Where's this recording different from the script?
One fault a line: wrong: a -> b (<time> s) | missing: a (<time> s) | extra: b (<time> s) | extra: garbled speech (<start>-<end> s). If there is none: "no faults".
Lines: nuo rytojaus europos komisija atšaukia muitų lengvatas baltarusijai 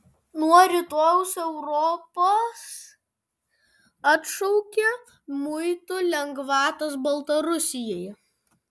missing: komisija (2.6 s)